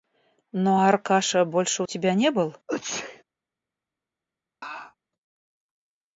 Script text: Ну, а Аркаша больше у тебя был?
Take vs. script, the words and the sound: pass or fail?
fail